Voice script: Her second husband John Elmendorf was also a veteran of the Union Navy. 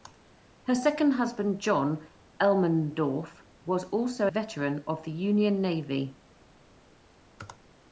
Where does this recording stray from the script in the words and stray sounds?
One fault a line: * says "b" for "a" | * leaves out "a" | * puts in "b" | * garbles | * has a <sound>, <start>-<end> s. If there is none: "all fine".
* leaves out "a"